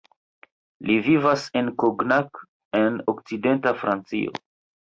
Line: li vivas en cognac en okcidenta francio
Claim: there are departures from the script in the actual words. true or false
false